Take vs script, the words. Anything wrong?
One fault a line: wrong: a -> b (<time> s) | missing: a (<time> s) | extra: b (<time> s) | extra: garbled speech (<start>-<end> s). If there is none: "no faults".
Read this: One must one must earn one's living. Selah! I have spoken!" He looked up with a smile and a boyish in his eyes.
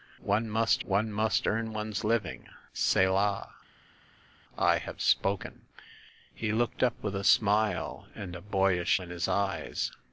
no faults